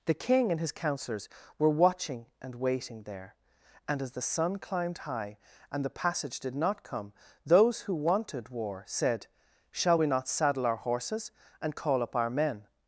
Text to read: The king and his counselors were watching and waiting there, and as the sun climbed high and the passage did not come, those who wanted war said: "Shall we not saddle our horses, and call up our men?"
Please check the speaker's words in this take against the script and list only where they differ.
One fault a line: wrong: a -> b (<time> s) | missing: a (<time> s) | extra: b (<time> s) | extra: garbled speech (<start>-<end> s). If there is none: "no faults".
no faults